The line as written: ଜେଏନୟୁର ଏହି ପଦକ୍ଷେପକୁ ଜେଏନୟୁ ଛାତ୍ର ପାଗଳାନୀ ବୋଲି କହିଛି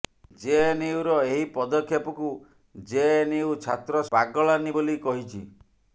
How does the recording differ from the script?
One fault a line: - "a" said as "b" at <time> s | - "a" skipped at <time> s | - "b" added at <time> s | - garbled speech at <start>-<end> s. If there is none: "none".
none